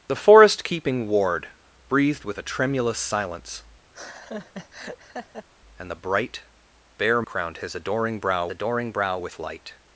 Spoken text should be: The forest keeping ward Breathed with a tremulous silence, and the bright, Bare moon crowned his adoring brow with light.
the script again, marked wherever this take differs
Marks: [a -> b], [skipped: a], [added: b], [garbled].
The forest keeping ward Breathed with a tremulous silence, and the bright, Bare [skipped: moon] crowned his adoring brow [added: adoring brow] with light.